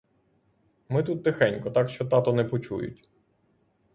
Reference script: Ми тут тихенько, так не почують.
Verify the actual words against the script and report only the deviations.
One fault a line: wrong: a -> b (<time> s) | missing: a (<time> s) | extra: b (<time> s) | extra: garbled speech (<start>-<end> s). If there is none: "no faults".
extra: що тато (1.9 s)